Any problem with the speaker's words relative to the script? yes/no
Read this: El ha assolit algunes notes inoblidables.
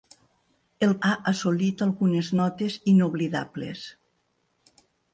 no